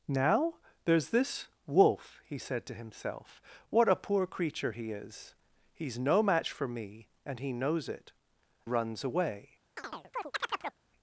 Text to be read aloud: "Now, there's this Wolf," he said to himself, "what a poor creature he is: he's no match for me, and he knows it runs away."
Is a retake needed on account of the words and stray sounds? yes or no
yes